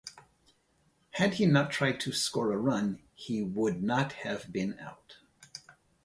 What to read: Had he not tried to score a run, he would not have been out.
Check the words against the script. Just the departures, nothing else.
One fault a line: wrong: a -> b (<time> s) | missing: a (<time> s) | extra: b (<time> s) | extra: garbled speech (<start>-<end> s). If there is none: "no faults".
no faults